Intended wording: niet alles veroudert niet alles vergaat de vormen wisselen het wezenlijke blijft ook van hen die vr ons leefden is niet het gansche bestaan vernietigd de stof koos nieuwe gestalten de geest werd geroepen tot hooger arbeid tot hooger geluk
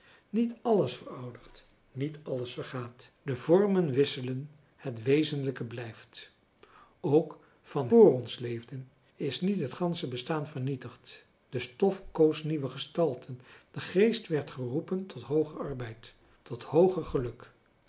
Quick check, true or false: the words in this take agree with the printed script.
false